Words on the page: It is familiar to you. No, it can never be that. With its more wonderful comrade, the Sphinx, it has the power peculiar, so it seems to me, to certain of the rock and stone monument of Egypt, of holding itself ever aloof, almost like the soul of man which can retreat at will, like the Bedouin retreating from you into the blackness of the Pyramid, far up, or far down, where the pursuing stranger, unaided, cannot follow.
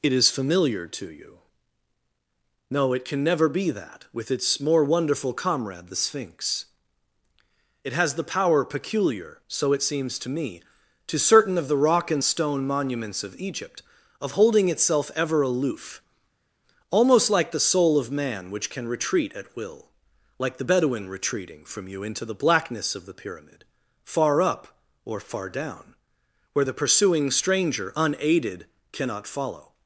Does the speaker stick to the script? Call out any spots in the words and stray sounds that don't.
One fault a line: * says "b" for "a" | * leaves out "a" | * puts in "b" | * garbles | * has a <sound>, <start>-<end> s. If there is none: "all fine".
* says "monuments" for "monument"